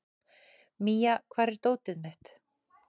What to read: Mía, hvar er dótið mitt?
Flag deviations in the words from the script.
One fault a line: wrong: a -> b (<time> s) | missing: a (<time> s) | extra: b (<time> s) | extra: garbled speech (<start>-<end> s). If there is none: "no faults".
no faults